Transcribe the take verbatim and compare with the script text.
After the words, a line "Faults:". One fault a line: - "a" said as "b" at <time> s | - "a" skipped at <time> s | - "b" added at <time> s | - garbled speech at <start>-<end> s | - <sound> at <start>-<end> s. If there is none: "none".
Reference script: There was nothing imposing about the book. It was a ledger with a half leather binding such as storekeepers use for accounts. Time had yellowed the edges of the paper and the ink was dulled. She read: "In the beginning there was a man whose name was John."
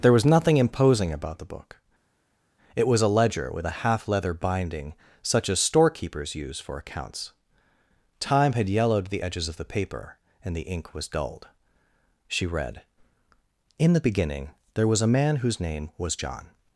There was nothing imposing about the book. It was a ledger with a half leather binding such as storekeepers use for accounts. Time had yellowed the edges of the paper and the ink was dulled. She read: "In the beginning there was a man whose name was John."
Faults:
none